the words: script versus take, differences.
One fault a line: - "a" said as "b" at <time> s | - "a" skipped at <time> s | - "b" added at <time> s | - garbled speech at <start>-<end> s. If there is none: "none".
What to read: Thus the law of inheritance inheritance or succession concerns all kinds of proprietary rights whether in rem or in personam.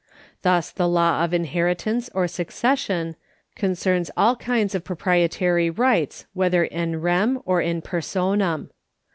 - "inheritance" skipped at 2.1 s